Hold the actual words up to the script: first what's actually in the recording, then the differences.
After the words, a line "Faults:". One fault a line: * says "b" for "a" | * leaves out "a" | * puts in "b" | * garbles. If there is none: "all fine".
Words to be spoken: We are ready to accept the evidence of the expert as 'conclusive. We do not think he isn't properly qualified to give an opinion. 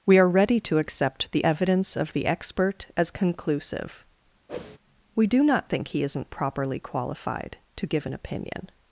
We are ready to accept the evidence of the expert as 'conclusive. We do not think he isn't properly qualified to give an opinion.
Faults:
all fine